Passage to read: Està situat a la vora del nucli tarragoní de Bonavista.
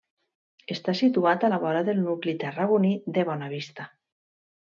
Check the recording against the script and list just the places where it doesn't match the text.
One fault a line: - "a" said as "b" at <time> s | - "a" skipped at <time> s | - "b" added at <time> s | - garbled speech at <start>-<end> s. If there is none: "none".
none